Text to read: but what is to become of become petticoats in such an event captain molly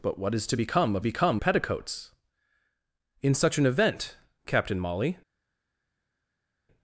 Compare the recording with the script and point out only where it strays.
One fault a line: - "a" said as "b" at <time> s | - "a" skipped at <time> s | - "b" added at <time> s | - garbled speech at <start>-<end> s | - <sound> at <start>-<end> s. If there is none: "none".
none